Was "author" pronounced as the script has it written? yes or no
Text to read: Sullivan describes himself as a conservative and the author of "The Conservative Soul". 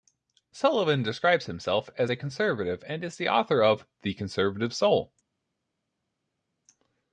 yes